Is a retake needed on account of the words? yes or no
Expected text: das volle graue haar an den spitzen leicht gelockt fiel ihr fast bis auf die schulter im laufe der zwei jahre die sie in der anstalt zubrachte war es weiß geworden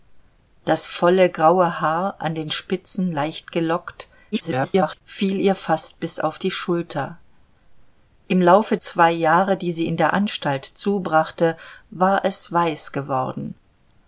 yes